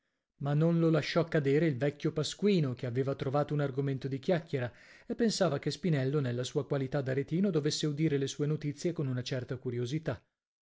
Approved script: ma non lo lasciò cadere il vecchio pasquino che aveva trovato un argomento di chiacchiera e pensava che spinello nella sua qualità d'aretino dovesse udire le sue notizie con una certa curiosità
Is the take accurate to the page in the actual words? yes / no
yes